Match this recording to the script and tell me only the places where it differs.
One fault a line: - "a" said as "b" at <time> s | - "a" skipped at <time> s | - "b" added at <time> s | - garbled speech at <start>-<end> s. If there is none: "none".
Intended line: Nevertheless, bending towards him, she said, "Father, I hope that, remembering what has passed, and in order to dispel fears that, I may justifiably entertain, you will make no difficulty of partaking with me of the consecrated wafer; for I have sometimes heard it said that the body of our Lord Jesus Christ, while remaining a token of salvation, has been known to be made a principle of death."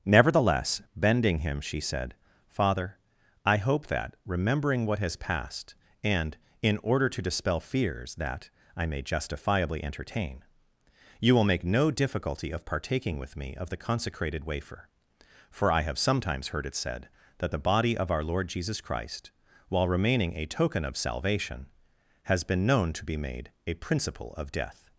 - "towards" skipped at 1.4 s